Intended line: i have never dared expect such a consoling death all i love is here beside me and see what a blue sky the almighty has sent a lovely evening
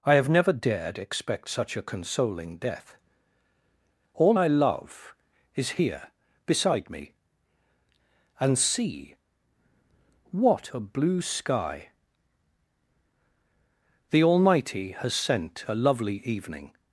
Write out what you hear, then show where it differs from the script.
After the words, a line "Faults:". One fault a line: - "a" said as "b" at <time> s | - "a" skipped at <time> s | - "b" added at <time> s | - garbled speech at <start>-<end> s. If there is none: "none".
i have never dared expect such a consoling death all i love is here beside me and see what a blue sky the almighty has sent a lovely evening
Faults:
none